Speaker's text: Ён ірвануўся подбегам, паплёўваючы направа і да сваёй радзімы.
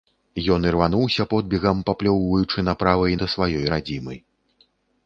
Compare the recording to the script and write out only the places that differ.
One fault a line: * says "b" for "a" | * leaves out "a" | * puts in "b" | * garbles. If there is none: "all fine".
all fine